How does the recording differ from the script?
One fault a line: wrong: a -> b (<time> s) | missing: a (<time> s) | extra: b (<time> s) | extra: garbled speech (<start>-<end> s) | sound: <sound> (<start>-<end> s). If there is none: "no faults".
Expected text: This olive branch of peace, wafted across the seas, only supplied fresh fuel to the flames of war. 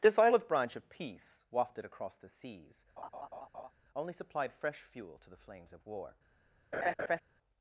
sound: laugh (3.0-3.7 s)
sound: laugh (6.7-7.2 s)